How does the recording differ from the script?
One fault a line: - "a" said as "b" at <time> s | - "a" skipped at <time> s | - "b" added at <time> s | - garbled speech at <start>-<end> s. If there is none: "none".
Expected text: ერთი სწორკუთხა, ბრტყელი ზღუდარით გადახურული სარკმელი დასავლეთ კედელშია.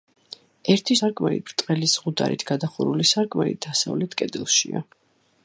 - "სწორკუთხა" said as "სარკმელი" at 1.0 s